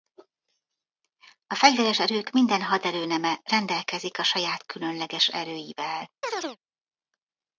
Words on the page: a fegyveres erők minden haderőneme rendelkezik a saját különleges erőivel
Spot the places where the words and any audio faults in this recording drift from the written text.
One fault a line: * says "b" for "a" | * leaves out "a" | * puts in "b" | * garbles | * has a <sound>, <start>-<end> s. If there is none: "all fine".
* has a chirp, 6.2-6.6 s